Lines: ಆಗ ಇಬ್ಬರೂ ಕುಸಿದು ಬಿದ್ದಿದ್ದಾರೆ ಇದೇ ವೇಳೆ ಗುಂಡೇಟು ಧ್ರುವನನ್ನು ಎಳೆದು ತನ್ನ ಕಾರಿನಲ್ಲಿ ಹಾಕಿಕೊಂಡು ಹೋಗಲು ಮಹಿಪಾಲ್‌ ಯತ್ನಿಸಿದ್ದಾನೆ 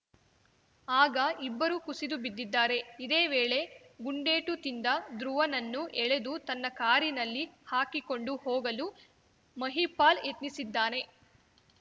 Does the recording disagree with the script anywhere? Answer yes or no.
yes